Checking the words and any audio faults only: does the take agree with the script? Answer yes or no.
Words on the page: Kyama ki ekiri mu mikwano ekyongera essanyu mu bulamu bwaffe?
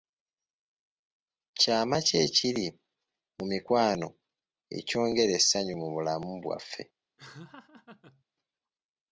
no